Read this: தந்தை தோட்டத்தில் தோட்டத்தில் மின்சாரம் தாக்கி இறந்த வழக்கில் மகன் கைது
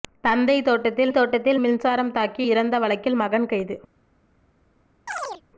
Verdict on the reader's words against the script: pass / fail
pass